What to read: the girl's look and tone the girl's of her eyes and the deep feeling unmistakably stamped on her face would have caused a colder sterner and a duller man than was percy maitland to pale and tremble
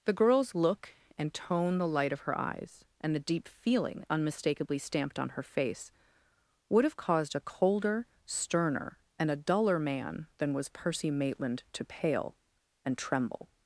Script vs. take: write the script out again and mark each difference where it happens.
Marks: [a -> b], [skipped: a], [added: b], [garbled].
the girl's look and tone the [girl's -> light] of her eyes and the deep feeling unmistakably stamped on her face would have caused a colder sterner and a duller man than was percy maitland to pale and tremble